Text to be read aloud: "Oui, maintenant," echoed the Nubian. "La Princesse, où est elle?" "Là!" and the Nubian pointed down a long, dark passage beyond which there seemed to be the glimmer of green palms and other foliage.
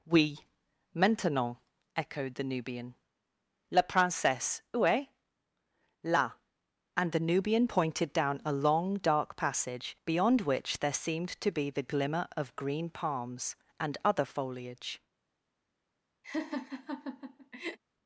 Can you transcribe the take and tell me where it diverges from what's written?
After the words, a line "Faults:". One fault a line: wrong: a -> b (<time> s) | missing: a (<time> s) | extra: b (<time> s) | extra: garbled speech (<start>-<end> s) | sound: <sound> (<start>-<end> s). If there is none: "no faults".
"Oui, maintenant," echoed the Nubian. "La Princesse, où est?" "Là!" and the Nubian pointed down a long, dark passage beyond which there seemed to be the glimmer of green palms and other foliage.
Faults:
missing: elle (5.1 s)
sound: laugh (16.2-17.8 s)